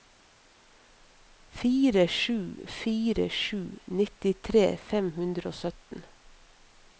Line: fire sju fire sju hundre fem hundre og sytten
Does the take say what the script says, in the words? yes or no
no